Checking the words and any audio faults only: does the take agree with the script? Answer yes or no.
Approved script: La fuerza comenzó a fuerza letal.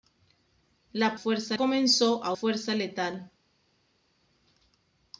yes